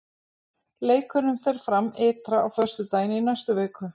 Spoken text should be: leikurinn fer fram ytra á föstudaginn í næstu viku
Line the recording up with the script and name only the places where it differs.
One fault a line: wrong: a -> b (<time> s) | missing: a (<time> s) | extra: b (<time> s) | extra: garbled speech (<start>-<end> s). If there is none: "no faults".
no faults